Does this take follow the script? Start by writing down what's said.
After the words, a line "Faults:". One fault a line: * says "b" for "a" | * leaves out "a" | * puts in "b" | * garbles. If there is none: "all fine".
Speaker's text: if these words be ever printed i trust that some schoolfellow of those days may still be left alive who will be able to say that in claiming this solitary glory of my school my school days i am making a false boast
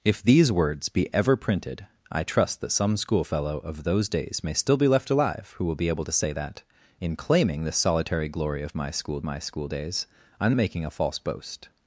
if these words be ever printed i trust that some schoolfellow of those days may still be left alive who will be able to say that in claiming this solitary glory of my school my school days i am making a false boast
Faults:
all fine